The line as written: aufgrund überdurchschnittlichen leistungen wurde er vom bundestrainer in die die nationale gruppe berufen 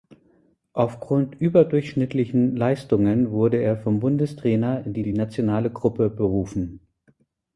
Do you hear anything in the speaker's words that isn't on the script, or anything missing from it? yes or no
no